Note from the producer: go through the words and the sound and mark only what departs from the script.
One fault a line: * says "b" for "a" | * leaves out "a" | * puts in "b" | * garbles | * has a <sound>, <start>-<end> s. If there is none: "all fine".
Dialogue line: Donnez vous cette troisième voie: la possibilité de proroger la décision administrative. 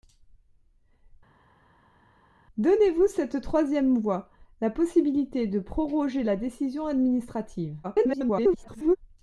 * garbles